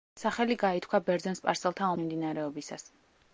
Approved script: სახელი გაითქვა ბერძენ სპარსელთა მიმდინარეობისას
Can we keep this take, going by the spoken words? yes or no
yes